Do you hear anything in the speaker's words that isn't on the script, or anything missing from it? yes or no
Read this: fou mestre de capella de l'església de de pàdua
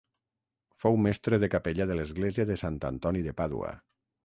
yes